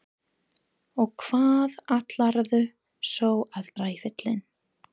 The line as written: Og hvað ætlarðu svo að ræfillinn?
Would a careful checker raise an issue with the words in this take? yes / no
no